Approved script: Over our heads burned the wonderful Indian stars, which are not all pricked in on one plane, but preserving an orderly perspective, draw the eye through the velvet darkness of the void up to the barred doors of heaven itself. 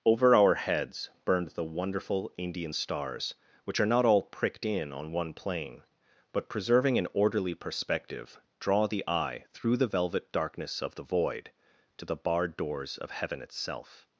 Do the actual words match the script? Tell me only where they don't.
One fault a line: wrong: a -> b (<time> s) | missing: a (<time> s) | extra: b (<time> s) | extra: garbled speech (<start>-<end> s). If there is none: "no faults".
missing: up (11.5 s)